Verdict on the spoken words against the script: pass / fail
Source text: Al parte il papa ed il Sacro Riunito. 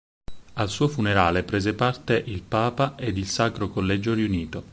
fail